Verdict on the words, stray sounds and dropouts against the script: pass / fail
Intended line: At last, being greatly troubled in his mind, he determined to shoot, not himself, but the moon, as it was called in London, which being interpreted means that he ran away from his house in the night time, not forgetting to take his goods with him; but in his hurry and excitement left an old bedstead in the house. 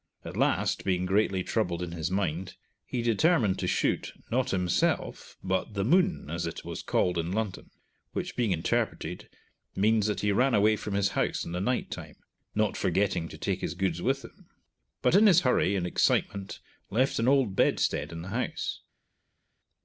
pass